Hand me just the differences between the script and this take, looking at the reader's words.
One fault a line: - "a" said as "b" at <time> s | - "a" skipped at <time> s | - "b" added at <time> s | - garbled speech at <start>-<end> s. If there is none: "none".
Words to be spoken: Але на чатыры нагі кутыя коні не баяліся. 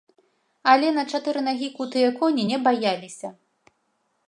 none